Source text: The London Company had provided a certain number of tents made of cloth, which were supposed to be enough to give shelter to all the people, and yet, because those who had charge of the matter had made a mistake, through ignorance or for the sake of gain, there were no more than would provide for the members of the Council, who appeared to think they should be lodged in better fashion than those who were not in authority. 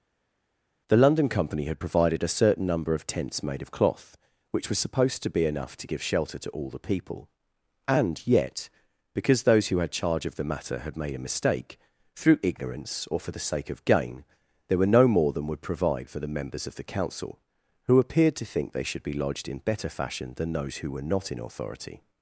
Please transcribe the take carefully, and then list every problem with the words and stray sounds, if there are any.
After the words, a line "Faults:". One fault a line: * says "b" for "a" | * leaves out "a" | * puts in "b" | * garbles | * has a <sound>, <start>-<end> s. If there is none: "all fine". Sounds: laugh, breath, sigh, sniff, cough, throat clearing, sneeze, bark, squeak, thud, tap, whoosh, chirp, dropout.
The London Company had provided a certain number of tents made of cloth, which was supposed to be enough to give shelter to all the people, and yet, because those who had charge of the matter had made a mistake, through ignorance or for the sake of gain, there were no more than would provide for the members of the Council, who appeared to think they should be lodged in better fashion than those who were not in authority.
Faults:
* says "was" for "were"